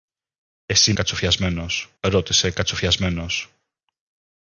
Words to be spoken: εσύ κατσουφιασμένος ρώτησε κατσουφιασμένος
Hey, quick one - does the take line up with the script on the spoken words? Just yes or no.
yes